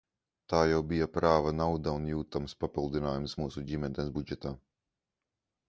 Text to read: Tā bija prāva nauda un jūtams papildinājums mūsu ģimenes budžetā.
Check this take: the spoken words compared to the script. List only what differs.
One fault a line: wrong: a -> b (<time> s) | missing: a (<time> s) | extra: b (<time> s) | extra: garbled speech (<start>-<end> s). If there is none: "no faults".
extra: jau (0.7 s)